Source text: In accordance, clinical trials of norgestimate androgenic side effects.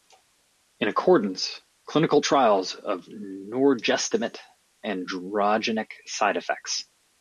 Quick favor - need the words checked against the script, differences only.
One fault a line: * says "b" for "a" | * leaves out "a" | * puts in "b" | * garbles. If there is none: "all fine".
all fine